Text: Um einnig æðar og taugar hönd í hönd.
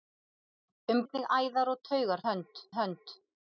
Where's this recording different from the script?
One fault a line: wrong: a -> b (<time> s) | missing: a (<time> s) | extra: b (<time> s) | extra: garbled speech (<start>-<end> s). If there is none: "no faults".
no faults